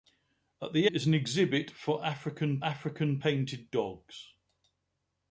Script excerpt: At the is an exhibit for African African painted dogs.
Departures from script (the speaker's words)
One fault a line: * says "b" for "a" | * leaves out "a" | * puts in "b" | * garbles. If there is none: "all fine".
all fine